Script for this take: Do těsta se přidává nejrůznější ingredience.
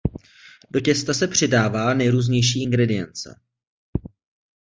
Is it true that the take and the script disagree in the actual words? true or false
false